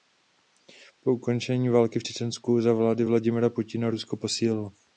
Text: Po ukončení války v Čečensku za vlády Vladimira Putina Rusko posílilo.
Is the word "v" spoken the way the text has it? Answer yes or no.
yes